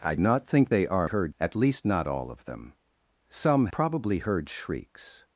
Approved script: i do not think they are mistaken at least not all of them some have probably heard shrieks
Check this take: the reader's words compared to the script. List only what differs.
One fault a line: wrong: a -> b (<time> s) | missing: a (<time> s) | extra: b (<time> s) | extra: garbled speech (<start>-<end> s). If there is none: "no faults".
missing: do (0.1 s)
wrong: mistaken -> heard (1.0 s)
missing: have (3.7 s)